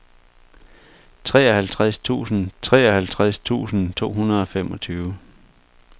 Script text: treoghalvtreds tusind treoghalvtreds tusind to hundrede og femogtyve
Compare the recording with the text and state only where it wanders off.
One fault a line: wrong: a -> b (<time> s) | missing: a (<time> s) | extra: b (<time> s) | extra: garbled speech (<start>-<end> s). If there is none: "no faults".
no faults